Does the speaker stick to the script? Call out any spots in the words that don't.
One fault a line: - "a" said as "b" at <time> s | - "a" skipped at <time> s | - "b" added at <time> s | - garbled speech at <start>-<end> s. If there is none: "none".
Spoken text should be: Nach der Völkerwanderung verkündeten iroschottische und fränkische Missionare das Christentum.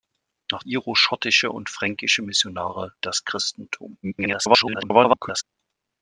- "der Völkerwanderung verkündeten" skipped at 0.6 s
- garbled speech at 4.0-5.4 s